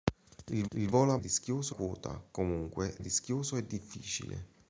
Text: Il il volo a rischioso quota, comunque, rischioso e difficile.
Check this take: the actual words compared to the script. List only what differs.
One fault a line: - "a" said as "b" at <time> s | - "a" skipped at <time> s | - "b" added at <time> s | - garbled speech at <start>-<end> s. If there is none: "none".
none